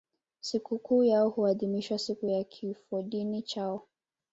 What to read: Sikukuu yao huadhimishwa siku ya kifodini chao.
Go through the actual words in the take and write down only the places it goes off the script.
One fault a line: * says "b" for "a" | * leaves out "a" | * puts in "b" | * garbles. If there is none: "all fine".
all fine